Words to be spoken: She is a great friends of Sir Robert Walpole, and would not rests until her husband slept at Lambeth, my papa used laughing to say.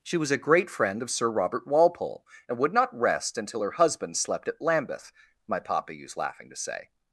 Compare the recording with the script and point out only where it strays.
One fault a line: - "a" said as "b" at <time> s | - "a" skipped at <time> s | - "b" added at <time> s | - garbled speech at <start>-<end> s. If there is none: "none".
- "is" said as "was" at 0.2 s
- "friends" said as "friend" at 0.7 s
- "rests" said as "rest" at 3.0 s